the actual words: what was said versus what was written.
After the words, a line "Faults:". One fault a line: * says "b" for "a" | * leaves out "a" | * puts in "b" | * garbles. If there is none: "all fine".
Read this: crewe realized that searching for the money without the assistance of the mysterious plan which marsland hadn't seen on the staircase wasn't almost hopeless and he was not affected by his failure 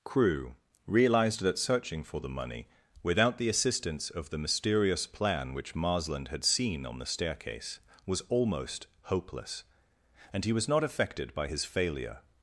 crewe realized that searching for the money without the assistance of the mysterious plan which marsland had seen on the staircase was almost hopeless and he was not affected by his failure
Faults:
* says "had" for "hadn't"
* says "was" for "wasn't"